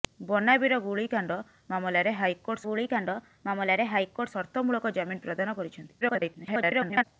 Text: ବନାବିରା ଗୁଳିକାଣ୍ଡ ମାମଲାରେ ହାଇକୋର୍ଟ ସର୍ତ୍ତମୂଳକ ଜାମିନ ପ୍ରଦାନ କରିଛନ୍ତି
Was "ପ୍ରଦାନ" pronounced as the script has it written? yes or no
yes